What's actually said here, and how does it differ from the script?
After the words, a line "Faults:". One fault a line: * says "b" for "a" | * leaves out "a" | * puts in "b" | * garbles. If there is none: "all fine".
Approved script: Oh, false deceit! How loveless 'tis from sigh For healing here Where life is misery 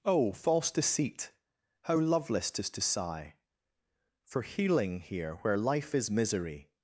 Oh, false deceit! How loveless 'tis to sigh For healing here Where life is misery
Faults:
* says "to" for "from"